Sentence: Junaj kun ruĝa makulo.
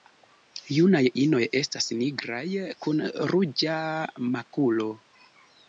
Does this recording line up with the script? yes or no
no